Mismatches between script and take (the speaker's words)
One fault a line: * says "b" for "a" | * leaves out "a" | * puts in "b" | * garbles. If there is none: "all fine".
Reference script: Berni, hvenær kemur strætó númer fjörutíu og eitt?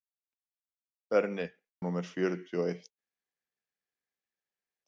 * leaves out "hvenær kemur strætó"